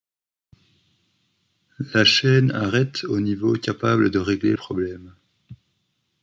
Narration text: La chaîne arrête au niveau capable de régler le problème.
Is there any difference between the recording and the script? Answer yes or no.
yes